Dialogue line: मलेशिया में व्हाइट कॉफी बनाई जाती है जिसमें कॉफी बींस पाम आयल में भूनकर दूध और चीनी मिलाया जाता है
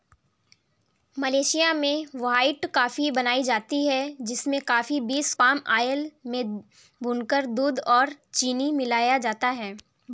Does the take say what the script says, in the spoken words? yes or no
yes